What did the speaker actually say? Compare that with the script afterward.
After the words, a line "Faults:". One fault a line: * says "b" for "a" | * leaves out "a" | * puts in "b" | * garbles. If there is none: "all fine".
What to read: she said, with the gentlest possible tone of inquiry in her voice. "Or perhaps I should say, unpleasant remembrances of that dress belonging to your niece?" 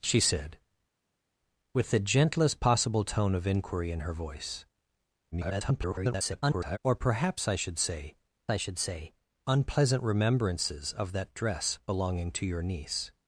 she said, with the gentlest possible tone of inquiry in her voice. [garbled] "Or perhaps I should say I should say, unpleasant remembrances of that dress belonging to your niece?"
Faults:
* garbles
* puts in "I should say"